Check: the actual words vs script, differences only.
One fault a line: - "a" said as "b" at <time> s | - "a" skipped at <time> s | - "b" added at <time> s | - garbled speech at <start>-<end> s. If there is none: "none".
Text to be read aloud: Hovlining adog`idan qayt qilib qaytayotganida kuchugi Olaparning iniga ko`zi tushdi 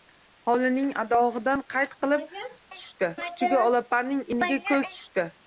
- "qaytayotganida" said as "tushdi" at 2.7 s